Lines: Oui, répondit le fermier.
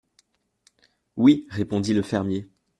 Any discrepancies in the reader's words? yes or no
no